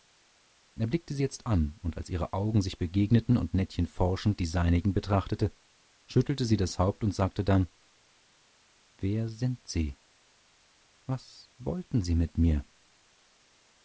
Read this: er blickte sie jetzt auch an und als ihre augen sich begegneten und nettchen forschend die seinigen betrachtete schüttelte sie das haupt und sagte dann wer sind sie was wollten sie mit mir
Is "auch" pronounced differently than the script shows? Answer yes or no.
yes